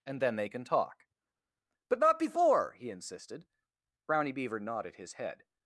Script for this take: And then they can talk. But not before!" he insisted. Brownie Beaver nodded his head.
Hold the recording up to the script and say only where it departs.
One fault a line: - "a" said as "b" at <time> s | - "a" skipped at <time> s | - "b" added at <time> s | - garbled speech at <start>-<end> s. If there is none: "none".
none